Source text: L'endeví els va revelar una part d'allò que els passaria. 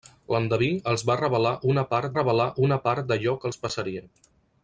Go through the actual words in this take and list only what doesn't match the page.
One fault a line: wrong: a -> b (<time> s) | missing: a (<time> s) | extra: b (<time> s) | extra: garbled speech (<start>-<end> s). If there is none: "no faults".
extra: revelar una part (2.2 s)